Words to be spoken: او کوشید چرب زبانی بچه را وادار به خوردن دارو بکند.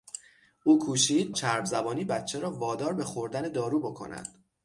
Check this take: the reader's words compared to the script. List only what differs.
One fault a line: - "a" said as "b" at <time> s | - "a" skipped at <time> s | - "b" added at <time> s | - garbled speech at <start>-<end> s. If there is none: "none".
none